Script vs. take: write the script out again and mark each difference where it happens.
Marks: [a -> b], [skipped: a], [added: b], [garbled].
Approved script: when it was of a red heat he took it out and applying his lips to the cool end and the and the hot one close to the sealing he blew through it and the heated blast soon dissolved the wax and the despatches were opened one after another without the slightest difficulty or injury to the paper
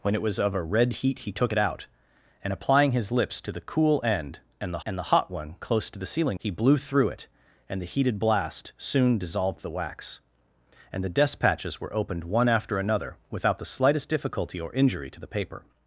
when it was of a red heat he took it out and applying his lips to the cool end and the and the hot one close to the sealing he blew through it and the heated blast soon dissolved the wax and the despatches were opened one after another without the slightest difficulty or injury to the paper